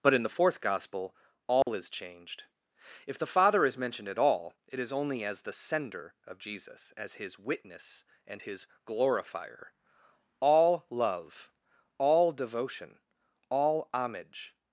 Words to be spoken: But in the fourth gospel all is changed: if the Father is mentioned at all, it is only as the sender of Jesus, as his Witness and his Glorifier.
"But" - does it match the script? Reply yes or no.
yes